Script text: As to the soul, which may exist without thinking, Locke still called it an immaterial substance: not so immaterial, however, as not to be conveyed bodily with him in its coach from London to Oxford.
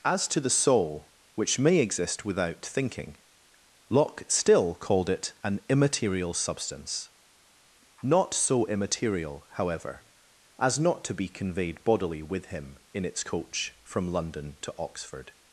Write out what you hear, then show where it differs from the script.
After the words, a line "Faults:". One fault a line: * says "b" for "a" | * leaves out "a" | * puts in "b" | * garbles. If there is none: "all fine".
As to the soul, which may exist without thinking, Locke still called it an immaterial substance: not so immaterial, however, as not to be conveyed bodily with him in its coach from London to Oxford.
Faults:
all fine